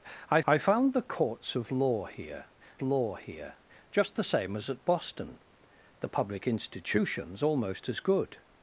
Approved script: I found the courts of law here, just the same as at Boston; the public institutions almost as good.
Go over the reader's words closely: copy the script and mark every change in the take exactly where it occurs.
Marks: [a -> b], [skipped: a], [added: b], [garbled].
I [added: I] found the courts of law here, [added: law here] just the same as at Boston; the public institutions almost as good.